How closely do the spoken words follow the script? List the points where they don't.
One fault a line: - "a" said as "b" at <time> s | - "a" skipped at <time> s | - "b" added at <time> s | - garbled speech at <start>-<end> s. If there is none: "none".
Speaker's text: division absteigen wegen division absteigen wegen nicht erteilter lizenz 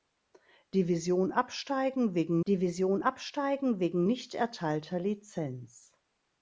none